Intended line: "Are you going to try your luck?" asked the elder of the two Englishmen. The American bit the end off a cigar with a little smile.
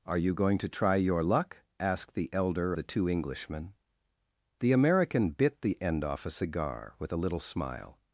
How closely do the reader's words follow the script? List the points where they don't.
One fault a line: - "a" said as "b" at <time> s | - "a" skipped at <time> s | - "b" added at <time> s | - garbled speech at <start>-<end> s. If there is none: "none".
- "of" skipped at 2.7 s